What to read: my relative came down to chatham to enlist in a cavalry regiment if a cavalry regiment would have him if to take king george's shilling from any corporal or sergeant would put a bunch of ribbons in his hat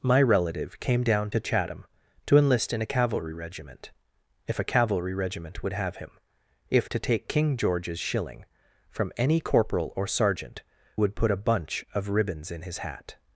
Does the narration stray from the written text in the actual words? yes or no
no